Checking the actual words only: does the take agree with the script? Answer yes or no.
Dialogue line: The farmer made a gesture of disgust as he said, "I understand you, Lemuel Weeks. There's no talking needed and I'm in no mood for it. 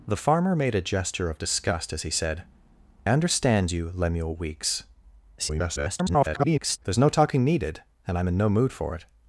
no